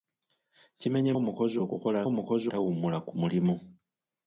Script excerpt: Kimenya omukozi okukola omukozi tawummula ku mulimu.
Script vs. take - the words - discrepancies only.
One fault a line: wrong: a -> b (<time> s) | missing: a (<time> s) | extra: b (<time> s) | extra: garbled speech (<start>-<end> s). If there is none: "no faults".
no faults